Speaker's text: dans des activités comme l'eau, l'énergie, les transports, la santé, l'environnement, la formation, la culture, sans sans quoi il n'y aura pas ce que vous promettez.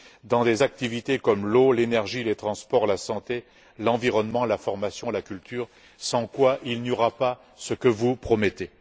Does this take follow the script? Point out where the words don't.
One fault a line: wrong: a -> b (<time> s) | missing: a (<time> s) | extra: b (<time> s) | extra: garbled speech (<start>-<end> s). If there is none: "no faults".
missing: sans (6.3 s)